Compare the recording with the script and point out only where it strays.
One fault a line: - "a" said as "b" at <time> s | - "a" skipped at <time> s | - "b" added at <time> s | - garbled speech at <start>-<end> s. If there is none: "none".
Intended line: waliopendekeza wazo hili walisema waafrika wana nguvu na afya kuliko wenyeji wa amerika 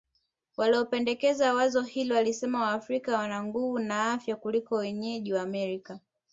none